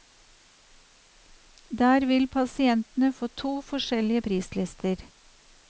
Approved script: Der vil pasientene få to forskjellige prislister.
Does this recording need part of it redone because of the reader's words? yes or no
no